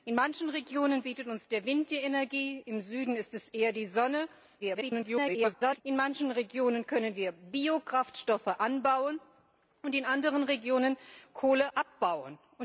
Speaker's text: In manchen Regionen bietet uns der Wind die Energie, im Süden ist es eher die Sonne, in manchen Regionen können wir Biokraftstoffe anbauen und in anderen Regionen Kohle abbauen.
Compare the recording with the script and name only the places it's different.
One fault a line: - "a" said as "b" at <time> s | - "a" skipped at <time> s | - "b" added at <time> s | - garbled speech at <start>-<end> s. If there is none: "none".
- garbled speech at 4.6-5.8 s